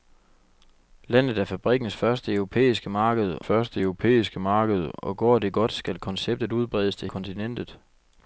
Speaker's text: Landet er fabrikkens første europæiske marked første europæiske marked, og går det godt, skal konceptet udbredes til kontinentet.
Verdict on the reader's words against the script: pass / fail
pass